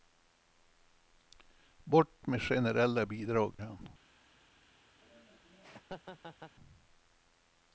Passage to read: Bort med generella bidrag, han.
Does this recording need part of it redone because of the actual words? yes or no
no